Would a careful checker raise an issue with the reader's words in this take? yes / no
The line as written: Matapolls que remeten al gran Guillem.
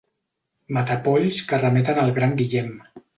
no